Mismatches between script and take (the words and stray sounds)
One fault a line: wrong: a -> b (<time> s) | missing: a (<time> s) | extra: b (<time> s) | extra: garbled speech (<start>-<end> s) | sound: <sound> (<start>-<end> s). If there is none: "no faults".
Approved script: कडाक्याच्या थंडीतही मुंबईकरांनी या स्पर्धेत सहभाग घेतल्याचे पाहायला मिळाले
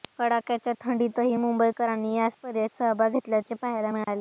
sound: dropout (4.0-4.1 s)